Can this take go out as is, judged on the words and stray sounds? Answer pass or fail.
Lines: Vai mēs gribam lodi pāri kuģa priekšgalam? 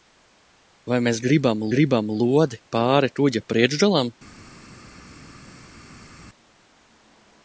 fail